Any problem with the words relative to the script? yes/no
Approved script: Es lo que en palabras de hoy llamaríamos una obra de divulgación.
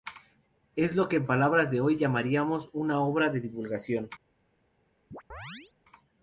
no